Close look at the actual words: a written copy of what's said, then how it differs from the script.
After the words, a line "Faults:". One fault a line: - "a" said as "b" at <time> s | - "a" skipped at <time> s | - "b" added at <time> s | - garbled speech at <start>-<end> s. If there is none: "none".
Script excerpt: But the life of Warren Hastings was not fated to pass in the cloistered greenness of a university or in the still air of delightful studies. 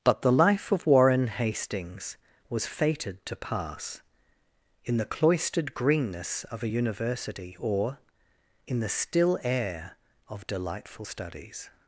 But the life of Warren Hastings was fated to pass in the cloistered greenness of a university or in the still air of delightful studies.
Faults:
- "not" skipped at 2.6 s